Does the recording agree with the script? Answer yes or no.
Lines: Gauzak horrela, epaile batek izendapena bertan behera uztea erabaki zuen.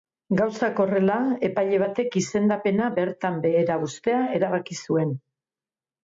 yes